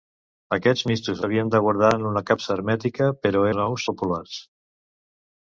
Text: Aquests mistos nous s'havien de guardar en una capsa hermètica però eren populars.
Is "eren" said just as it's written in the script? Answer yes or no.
no